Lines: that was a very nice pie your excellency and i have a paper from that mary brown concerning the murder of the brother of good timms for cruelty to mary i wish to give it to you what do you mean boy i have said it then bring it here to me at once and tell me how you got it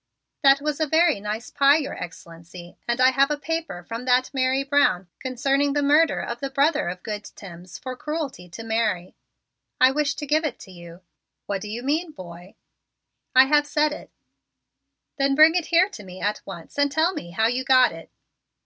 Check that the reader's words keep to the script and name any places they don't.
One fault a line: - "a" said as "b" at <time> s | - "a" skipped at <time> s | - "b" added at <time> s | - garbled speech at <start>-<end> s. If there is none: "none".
none